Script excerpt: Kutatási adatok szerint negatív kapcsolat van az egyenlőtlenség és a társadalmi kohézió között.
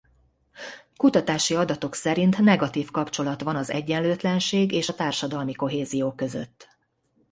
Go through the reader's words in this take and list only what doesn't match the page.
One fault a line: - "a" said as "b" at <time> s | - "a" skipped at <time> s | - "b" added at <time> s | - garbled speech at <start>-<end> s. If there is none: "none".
none